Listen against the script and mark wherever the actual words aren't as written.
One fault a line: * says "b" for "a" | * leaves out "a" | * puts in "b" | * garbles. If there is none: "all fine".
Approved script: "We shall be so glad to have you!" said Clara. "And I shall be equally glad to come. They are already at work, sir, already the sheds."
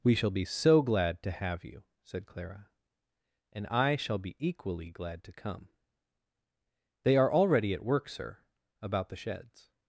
* says "about" for "already"